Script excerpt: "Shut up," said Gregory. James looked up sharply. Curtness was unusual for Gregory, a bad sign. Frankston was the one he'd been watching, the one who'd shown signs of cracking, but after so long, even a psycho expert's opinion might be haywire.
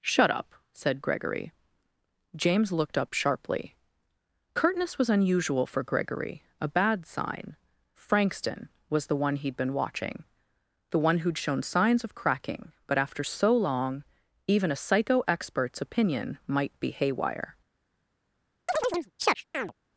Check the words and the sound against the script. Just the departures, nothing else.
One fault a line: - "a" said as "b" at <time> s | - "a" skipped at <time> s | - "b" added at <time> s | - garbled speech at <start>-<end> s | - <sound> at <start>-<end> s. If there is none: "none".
- chirp at 18.7-19.7 s